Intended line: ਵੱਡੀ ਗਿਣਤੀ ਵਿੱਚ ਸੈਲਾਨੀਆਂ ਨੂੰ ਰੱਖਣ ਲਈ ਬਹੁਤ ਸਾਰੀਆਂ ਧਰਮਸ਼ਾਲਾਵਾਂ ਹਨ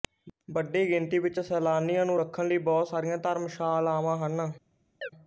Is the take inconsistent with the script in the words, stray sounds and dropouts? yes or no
yes